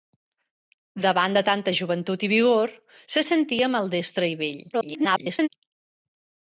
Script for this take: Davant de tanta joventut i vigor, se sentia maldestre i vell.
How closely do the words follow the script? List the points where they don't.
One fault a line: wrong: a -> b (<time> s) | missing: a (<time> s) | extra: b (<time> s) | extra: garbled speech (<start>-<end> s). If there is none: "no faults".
extra: garbled speech (4.7-5.5 s)